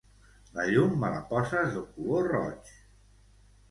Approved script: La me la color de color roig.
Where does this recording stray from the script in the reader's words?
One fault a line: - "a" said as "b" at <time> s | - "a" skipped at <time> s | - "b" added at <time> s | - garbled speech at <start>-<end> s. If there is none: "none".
- "llum" added at 0.7 s
- "color" said as "poses" at 1.3 s